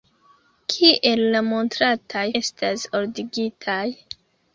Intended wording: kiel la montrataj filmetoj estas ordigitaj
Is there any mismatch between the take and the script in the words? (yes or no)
yes